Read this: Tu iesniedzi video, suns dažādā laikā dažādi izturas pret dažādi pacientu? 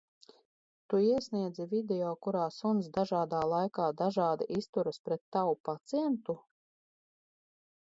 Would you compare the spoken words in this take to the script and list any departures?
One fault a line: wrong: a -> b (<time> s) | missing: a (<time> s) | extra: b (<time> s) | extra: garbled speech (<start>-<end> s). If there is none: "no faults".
extra: kurā (2.3 s)
wrong: dažādi -> tavu (5.4 s)